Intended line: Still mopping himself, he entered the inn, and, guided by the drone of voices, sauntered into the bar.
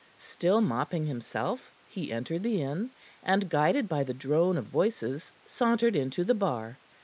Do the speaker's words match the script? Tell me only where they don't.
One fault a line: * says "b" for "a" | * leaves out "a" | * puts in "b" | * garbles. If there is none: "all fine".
all fine